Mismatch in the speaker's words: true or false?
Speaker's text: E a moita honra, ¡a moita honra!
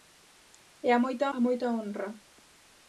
true